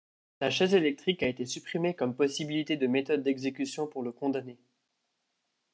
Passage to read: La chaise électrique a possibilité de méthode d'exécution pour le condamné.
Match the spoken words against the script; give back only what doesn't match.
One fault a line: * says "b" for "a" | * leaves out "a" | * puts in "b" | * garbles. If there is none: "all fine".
* puts in "été supprimée comme"